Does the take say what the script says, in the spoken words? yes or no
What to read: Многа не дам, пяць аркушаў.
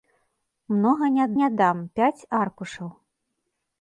no